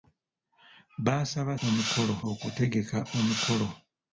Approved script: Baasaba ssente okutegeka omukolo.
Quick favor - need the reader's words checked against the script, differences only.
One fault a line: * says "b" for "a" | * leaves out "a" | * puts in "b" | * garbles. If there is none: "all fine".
* says "omukolo" for "ssente"